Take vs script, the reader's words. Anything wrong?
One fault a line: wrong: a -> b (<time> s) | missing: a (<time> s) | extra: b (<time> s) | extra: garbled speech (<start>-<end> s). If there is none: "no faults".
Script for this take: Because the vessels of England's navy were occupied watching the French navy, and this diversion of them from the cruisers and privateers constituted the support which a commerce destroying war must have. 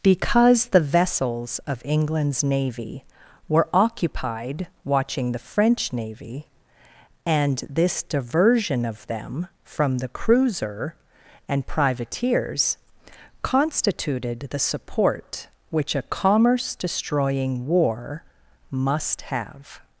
wrong: cruisers -> cruiser (10.1 s)